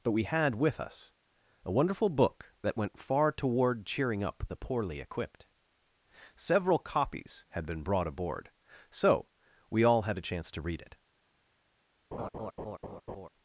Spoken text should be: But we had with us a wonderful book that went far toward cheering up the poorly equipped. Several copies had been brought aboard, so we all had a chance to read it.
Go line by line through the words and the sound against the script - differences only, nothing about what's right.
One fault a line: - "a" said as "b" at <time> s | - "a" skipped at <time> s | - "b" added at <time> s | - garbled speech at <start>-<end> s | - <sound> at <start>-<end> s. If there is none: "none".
- laugh at 12.1-13.3 s